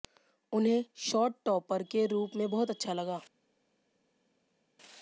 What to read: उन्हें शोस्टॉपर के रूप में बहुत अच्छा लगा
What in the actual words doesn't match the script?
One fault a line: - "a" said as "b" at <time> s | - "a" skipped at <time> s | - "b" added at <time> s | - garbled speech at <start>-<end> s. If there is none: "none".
none